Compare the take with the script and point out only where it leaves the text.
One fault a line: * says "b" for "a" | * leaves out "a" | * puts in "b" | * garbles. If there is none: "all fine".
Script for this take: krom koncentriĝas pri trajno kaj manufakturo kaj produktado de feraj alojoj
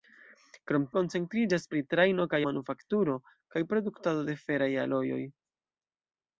all fine